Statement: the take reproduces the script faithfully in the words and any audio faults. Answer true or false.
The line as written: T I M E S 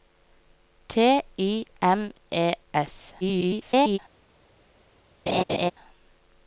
false